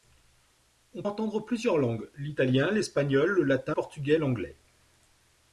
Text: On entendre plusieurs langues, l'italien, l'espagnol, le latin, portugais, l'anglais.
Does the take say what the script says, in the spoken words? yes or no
yes